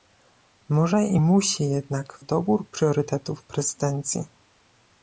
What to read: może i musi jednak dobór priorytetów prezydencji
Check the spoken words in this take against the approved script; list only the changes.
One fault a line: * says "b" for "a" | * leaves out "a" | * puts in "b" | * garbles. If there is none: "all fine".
all fine